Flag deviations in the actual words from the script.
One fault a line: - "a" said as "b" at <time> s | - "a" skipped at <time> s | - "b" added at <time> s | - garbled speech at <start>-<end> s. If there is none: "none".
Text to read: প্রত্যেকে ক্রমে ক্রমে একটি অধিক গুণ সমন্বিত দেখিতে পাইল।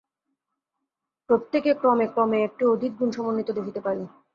none